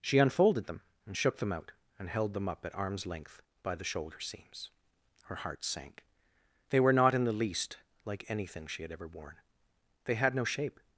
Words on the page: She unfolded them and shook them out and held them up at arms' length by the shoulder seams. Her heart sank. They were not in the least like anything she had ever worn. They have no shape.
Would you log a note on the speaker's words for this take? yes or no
yes